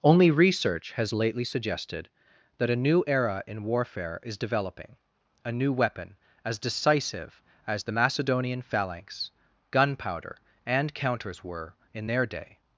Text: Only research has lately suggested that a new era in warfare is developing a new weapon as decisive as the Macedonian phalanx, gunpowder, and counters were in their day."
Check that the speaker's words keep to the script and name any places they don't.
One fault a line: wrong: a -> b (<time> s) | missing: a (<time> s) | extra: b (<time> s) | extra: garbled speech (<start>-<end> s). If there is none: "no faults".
no faults